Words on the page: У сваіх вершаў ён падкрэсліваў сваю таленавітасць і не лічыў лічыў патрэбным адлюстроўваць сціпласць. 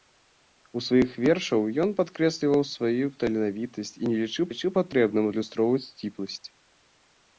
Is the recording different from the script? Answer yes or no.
no